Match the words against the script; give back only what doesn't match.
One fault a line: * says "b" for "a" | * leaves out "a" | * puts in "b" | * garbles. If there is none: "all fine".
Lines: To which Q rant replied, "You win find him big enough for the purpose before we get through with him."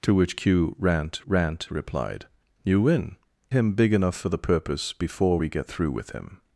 * puts in "rant"
* leaves out "find"